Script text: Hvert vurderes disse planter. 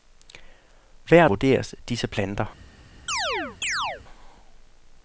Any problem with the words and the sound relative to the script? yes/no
yes